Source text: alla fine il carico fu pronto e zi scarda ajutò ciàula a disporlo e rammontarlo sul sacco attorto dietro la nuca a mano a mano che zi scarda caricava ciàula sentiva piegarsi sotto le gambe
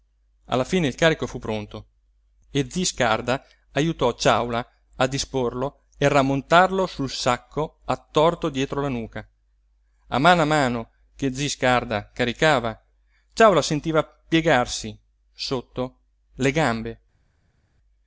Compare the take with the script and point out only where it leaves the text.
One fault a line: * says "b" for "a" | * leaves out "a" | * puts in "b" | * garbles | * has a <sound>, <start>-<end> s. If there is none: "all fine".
all fine